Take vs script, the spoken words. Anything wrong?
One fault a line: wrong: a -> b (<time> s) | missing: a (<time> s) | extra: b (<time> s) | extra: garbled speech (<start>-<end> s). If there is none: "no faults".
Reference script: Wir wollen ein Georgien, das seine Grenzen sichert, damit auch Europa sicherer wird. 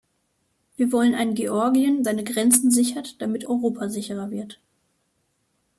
missing: das (2.0 s)
missing: auch (3.5 s)